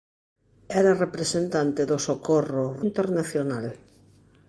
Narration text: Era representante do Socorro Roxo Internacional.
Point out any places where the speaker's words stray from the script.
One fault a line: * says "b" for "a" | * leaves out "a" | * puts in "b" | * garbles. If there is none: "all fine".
* leaves out "Roxo"